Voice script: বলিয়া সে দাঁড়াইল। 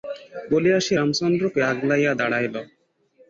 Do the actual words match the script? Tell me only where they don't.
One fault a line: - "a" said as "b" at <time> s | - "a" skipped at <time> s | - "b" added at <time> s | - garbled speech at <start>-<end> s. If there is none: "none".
- "রামচন্দ্রকে আগলাইয়া" added at 0.9 s